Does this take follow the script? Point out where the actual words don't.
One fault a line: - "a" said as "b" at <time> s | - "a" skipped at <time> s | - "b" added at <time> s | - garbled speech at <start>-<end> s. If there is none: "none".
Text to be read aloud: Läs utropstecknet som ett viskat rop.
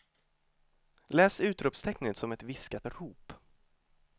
none